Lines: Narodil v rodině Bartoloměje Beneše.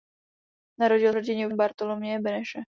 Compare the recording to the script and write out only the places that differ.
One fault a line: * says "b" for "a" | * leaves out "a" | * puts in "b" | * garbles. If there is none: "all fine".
all fine